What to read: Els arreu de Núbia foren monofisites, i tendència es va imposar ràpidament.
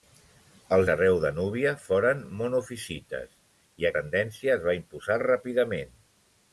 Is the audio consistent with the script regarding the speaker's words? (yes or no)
yes